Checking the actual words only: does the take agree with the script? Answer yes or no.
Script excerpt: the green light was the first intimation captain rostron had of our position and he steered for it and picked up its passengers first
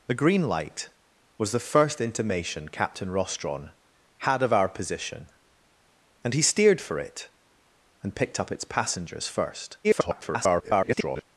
no